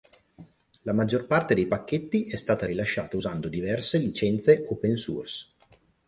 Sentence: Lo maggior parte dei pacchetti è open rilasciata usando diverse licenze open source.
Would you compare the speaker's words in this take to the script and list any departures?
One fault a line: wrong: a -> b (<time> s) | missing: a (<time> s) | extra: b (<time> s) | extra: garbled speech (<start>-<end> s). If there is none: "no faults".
wrong: Lo -> La (0.8 s)
wrong: open -> stata (2.4 s)